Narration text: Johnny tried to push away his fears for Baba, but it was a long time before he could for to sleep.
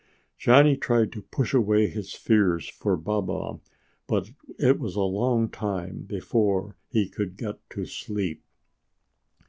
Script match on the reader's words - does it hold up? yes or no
no